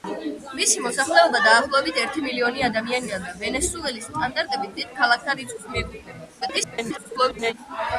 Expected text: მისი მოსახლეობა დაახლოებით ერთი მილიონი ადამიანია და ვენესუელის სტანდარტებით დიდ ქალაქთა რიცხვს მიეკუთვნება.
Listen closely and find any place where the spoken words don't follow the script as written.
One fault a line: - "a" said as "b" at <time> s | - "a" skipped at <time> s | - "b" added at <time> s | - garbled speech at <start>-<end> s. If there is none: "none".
- garbled speech at 6.4-7.5 s